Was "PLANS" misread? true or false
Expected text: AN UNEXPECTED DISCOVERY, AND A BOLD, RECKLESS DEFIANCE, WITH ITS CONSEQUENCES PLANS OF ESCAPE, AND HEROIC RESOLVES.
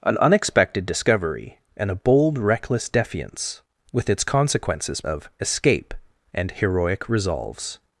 true